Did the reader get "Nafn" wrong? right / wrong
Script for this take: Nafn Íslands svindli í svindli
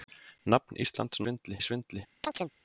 right